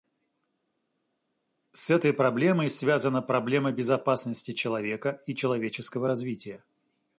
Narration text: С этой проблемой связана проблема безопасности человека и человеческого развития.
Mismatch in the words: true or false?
false